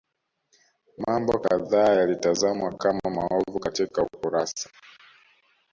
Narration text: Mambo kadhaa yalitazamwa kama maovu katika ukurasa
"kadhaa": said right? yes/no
yes